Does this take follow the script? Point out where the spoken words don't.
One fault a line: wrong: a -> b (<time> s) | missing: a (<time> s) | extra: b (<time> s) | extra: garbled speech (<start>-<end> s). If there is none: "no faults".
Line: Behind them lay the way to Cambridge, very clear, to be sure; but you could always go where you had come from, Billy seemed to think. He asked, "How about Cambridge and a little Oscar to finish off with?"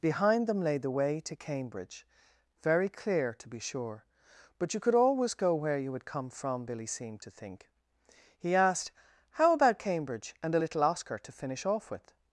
no faults